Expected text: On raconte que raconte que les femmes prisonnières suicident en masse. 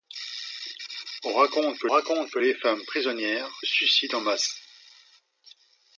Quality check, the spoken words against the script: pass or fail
pass